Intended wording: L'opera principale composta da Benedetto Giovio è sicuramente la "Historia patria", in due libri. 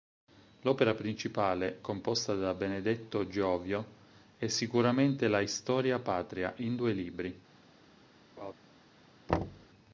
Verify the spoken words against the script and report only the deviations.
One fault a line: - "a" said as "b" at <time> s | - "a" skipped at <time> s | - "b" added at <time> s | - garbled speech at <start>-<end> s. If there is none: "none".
none